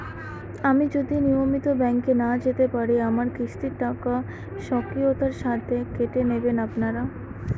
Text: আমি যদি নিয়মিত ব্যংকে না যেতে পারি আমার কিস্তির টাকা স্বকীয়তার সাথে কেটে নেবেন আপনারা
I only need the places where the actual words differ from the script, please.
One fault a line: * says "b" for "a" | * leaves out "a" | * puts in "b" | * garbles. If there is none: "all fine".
all fine